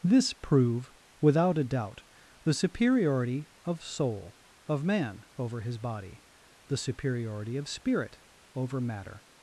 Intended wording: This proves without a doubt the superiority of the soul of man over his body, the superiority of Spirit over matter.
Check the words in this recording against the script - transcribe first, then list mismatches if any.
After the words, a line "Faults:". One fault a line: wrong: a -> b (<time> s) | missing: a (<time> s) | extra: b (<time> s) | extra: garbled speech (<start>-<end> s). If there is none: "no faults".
This prove without a doubt the superiority of soul of man over his body, the superiority of Spirit over matter.
Faults:
wrong: proves -> prove (0.3 s)
missing: the (3.8 s)